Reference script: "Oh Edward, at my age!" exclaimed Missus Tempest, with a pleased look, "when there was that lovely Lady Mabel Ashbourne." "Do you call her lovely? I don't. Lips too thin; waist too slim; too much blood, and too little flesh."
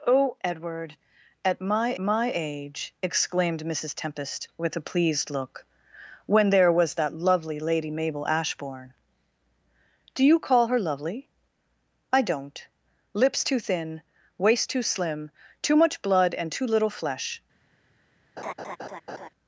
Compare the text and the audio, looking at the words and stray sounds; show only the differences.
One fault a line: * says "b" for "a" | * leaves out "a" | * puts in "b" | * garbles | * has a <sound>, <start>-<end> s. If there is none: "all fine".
* puts in "my"
* has a laugh, 18.4-19.3 s